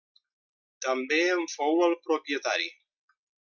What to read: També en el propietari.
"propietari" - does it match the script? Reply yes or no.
yes